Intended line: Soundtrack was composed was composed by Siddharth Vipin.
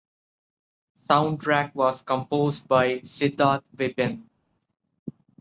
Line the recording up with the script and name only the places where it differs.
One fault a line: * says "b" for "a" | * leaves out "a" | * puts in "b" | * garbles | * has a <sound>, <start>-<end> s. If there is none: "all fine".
* leaves out "was composed"